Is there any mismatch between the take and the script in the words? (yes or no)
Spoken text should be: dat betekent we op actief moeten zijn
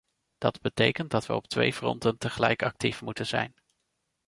yes